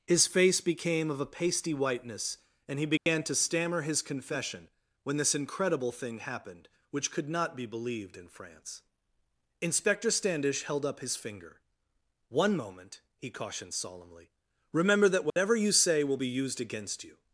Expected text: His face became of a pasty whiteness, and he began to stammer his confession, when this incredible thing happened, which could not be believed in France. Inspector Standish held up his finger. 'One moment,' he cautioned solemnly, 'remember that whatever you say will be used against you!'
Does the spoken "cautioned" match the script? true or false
true